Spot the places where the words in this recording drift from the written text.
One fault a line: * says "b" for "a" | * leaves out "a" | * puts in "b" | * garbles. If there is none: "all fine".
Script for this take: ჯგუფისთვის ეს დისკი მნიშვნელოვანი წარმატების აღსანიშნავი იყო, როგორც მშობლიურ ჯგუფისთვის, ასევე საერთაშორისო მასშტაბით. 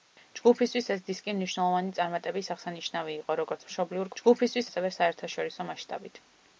all fine